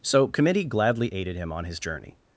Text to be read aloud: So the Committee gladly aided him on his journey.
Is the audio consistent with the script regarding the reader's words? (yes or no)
no